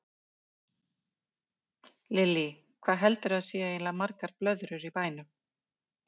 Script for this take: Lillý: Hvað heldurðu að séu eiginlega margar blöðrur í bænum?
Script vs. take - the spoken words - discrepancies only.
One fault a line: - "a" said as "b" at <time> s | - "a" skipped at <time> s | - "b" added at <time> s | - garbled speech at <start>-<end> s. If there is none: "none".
none